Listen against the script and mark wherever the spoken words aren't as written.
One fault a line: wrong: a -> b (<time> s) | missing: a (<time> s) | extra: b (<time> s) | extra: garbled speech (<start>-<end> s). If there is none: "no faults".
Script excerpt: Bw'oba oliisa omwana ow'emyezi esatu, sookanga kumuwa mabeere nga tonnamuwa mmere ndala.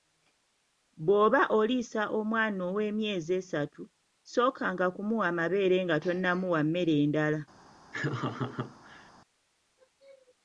no faults